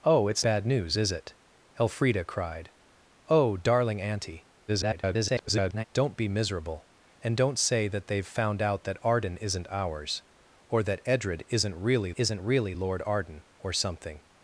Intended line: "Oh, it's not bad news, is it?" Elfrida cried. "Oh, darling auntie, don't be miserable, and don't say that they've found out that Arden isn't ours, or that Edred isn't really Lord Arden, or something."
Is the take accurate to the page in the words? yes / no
no